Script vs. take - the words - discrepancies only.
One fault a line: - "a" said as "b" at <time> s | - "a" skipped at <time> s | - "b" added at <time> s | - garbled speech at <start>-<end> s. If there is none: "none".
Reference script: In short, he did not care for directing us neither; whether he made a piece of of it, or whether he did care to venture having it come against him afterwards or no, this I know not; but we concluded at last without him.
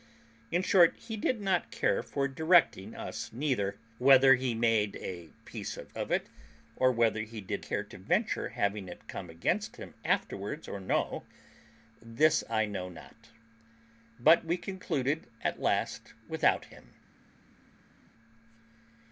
none